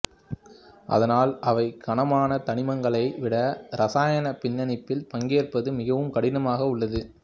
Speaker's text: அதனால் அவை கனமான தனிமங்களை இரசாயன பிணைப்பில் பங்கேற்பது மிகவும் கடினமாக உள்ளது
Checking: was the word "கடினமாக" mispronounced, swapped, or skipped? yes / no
no